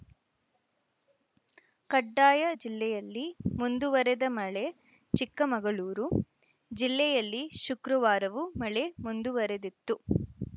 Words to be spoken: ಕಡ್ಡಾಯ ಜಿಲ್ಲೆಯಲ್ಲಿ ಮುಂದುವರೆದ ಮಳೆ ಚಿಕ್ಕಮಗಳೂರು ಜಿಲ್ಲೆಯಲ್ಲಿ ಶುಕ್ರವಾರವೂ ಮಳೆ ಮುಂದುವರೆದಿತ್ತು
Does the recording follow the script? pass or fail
pass